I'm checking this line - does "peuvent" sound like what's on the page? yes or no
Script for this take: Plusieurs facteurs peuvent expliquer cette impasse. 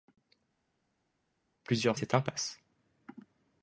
no